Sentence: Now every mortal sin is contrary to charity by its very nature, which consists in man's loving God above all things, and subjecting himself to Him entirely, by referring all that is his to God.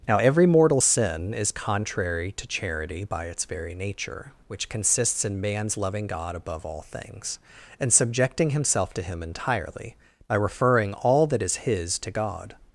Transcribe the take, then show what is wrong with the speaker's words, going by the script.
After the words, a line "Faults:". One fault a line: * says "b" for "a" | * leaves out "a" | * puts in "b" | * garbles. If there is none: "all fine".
Now every mortal sin is contrary to charity by its very nature, which consists in man's loving God above all things, and subjecting himself to Him entirely, by referring all that is his to God.
Faults:
all fine